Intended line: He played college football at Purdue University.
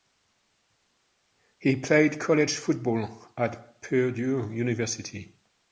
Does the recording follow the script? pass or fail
pass